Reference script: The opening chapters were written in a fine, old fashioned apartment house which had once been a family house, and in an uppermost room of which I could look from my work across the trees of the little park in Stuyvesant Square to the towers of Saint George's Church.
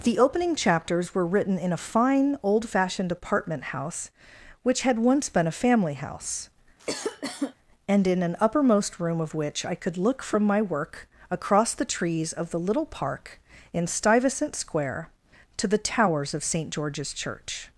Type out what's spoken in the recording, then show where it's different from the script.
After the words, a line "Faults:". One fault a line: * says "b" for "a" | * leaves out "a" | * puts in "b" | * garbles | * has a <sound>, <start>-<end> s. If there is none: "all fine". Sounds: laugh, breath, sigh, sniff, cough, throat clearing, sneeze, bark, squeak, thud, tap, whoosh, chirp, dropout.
The opening chapters were written in a fine, old fashioned apartment house which had once been a family house, and in an uppermost room of which I could look from my work across the trees of the little park in Stuyvesant Square to the towers of Saint George's Church.
Faults:
* has a cough, 6.8-7.5 s